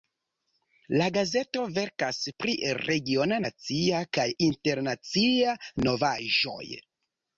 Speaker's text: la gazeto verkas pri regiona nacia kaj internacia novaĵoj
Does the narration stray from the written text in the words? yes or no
no